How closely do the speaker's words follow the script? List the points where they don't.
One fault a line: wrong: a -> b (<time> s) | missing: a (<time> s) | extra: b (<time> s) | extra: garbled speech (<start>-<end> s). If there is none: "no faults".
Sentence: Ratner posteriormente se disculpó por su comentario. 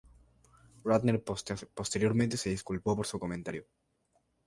no faults